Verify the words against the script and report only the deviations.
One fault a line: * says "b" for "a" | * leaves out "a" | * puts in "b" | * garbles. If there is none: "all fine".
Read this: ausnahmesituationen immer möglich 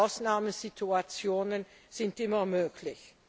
* puts in "sind"